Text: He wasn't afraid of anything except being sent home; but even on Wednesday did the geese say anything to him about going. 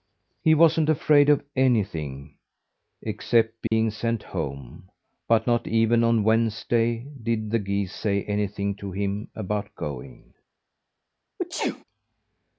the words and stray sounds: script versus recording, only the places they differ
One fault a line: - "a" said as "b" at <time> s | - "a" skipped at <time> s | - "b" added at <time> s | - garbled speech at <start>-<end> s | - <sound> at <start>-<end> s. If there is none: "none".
- dropout at 3.7-3.7 s
- "not" added at 5.4 s
- sneeze at 11.4-11.8 s